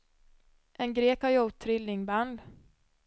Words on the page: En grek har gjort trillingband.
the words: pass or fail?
pass